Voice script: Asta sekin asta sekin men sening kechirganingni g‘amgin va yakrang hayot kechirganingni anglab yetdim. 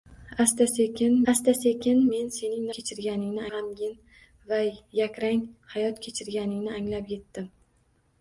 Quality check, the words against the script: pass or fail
pass